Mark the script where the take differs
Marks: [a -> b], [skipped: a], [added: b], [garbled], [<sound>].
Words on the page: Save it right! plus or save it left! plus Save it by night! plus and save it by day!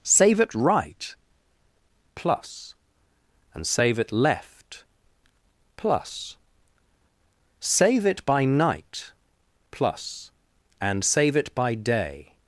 Save it right! plus [or -> and] save it left! plus Save it by night! plus and save it by day!